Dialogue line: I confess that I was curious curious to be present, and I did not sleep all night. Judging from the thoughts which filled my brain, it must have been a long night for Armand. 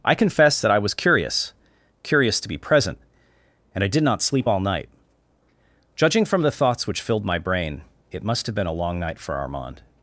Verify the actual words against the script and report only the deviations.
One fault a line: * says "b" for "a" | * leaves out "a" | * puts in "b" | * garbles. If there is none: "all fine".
all fine